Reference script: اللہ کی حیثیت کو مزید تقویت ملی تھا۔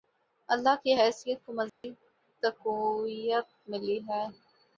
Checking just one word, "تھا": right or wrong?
wrong